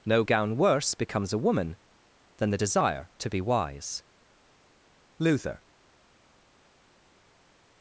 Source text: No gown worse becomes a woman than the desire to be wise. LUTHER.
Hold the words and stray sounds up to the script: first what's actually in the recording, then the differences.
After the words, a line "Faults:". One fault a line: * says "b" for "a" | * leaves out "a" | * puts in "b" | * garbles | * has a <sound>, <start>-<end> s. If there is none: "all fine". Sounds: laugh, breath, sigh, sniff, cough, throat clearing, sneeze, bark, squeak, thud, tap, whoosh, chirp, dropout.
No gown worse becomes a woman than the desire to be wise. LUTHER.
Faults:
all fine